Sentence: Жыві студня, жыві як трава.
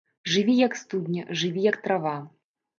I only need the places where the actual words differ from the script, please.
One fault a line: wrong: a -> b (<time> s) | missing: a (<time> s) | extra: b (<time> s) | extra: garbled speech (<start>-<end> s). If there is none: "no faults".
extra: як (0.6 s)